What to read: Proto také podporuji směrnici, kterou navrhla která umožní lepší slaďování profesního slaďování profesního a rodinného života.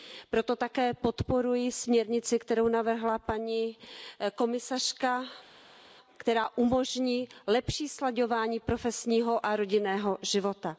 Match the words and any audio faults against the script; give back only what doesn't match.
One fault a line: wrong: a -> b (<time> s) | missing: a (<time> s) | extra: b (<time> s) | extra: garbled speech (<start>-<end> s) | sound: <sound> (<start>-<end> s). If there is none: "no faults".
extra: paní komisařka (3.2 s)
missing: slaďování profesního (9.5 s)